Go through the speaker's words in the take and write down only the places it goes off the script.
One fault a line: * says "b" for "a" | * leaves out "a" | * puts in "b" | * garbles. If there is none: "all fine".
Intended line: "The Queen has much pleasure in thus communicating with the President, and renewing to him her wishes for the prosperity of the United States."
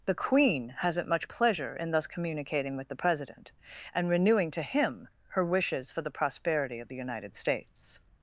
* says "hasn't" for "has"